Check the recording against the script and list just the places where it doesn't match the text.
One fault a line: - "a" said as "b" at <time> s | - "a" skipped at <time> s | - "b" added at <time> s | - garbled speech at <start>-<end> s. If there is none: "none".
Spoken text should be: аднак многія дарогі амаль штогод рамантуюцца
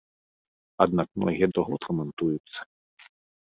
- "дарогі амаль" skipped at 1.5 s